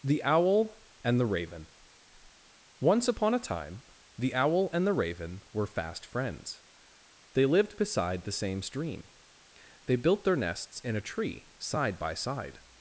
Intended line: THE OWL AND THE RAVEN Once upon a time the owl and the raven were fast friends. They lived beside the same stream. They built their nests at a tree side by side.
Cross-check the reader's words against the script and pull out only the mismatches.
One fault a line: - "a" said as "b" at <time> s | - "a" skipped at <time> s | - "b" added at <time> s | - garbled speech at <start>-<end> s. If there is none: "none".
- "at" said as "in" at 10.8 s